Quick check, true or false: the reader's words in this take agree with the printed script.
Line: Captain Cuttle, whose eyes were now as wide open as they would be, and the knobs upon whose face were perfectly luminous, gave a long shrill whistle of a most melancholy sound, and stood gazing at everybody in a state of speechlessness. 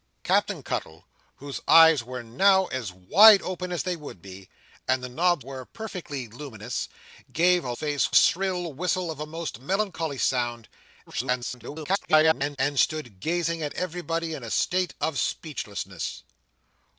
false